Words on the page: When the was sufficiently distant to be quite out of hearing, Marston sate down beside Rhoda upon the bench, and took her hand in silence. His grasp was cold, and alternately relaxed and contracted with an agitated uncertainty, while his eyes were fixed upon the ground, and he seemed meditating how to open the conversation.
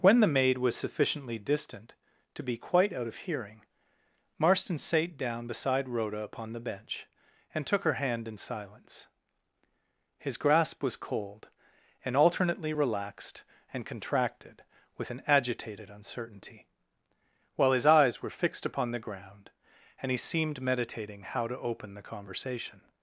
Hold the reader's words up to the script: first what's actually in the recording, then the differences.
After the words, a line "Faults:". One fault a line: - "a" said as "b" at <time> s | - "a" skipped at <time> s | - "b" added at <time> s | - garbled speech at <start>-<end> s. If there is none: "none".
When the maid was sufficiently distant to be quite out of hearing, Marston sate down beside Rhoda upon the bench, and took her hand in silence. His grasp was cold, and alternately relaxed and contracted with an agitated uncertainty, while his eyes were fixed upon the ground, and he seemed meditating how to open the conversation.
Faults:
- "maid" added at 0.3 s